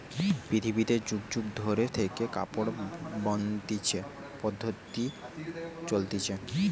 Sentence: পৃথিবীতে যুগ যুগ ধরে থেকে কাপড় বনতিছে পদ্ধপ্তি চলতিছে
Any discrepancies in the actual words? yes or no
no